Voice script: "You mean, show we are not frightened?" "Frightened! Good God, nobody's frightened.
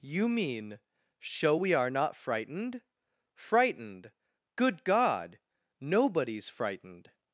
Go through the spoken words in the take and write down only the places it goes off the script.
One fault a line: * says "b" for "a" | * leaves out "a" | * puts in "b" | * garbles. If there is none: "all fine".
all fine